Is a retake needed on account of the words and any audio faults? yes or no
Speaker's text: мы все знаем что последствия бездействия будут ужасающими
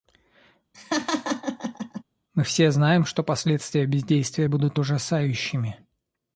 yes